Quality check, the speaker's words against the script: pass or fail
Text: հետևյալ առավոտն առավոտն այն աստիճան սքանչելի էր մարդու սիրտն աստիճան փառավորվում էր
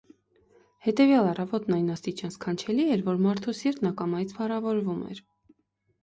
fail